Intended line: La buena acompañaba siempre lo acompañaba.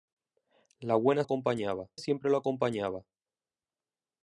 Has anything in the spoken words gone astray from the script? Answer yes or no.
no